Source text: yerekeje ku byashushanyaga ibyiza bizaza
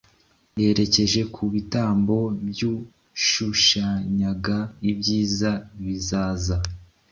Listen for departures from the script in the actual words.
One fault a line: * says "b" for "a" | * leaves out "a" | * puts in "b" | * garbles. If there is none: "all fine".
* puts in "bitambo"